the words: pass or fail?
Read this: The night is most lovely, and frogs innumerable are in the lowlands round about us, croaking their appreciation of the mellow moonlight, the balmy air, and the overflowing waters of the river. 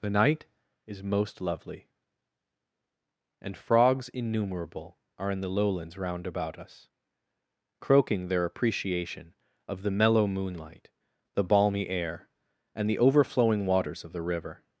pass